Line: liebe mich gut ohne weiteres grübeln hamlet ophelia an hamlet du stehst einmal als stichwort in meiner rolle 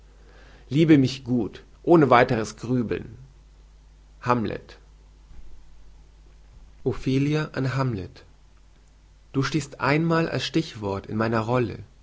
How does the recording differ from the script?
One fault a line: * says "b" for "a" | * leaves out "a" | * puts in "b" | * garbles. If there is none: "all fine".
all fine